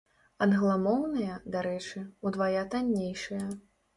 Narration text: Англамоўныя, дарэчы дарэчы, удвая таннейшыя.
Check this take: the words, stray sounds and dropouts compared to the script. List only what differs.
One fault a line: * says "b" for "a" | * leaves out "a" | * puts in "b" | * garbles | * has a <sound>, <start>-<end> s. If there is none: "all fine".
* leaves out "дарэчы"